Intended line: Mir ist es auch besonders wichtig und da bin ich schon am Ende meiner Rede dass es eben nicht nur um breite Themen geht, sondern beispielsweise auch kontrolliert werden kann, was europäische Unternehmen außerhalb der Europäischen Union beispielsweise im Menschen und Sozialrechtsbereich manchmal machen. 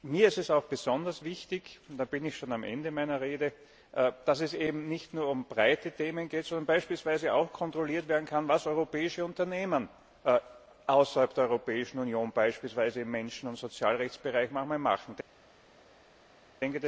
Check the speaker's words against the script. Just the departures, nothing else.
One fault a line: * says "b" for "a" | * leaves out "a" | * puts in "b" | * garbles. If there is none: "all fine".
all fine